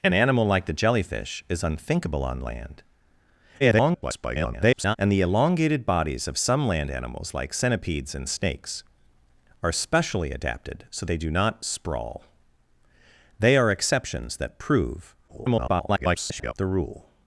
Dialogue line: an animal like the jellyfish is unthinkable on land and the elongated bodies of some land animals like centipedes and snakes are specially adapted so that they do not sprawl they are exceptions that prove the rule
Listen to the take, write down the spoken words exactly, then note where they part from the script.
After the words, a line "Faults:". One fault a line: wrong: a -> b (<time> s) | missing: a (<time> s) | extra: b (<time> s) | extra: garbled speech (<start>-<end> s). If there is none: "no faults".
an animal like the jellyfish is unthinkable on land [garbled] and the elongated bodies of some land animals like centipedes and snakes are specially adapted so they do not sprawl they are exceptions that prove [garbled] the rule
Faults:
extra: garbled speech (3.6-5.0 s)
missing: that (11.1 s)
extra: garbled speech (15.3-16.5 s)